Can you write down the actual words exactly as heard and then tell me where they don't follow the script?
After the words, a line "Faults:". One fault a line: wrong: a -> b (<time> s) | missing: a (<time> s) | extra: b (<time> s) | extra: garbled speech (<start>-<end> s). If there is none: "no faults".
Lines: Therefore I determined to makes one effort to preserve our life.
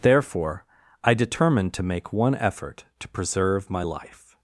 Therefore I determined to make one effort to preserve my life.
Faults:
wrong: makes -> make (1.8 s)
wrong: our -> my (3.7 s)